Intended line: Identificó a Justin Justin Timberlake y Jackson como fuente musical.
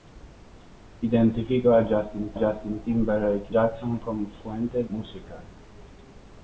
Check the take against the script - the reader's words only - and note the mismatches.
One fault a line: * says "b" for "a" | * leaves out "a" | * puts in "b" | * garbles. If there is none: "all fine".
all fine